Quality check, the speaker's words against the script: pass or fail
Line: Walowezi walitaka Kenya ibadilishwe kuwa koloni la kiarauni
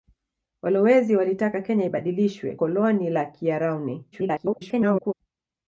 fail